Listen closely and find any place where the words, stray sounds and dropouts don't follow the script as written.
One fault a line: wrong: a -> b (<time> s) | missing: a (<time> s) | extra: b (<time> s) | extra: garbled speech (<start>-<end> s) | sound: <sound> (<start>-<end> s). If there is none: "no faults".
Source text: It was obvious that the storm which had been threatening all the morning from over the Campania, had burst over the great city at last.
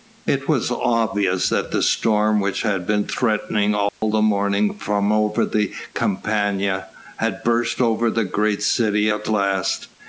sound: dropout (3.9-4.0 s)